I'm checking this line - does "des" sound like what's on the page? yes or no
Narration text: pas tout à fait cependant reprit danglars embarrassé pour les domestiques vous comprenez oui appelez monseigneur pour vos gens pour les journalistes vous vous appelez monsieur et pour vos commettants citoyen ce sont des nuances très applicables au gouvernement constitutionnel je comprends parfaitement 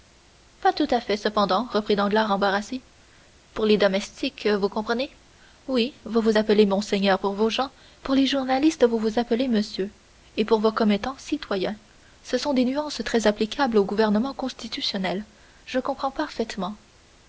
yes